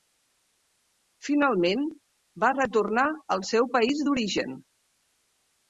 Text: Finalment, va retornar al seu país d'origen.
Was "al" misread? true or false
false